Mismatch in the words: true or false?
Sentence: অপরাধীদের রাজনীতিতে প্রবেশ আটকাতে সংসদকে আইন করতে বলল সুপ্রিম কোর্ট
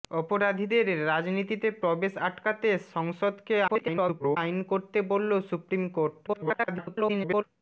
true